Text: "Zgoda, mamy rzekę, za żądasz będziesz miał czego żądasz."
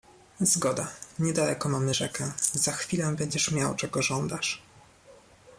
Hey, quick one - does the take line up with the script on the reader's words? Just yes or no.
no